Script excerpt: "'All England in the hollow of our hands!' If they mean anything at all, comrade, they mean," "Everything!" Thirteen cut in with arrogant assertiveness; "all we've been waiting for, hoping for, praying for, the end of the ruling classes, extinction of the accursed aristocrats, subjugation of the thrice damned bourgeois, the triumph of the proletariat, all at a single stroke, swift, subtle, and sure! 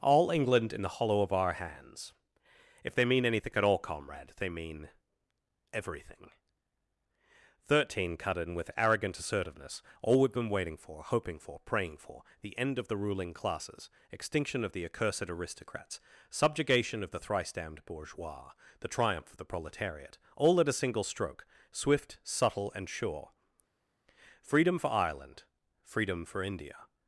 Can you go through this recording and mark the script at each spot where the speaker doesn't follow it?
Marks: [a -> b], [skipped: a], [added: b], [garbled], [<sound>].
"'All England in the hollow of our hands!' If they mean anything at all, comrade, they mean," "Everything!" Thirteen cut in with arrogant assertiveness; "all we've been waiting for, hoping for, praying for, the end of the ruling classes, extinction of the accursed aristocrats, subjugation of the thrice damned bourgeois, the triumph of the proletariat, all at a single stroke, swift, subtle, and sure! [added: Freedom for Ireland freedom for India]